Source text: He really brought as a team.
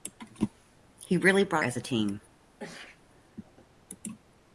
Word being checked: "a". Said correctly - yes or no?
yes